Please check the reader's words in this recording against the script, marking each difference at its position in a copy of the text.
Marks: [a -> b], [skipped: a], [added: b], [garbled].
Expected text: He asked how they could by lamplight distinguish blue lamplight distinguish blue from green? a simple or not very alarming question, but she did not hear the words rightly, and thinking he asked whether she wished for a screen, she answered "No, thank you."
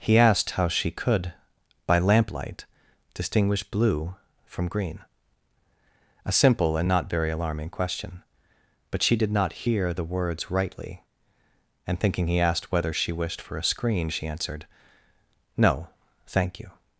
He asked how [they -> she] could by lamplight distinguish blue [skipped: lamplight distinguish blue] from green? a simple [or -> and] not very alarming question, but she did not hear the words rightly, and thinking he asked whether she wished for a screen, she answered "No, thank you."